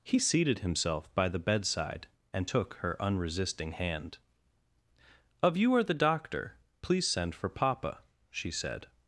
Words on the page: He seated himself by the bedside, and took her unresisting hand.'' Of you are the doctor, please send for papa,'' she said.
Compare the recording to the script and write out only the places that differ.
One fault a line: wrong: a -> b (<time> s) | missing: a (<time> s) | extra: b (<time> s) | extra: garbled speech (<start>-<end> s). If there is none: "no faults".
no faults